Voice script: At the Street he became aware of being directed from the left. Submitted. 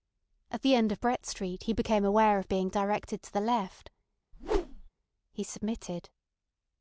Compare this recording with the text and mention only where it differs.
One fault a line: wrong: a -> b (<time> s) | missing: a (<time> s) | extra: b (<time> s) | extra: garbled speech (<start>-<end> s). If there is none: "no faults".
extra: end of Brett (0.7 s)
wrong: from -> to (3.2 s)
extra: He (5.3 s)